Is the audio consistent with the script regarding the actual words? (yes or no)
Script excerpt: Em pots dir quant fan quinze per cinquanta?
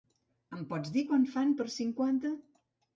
no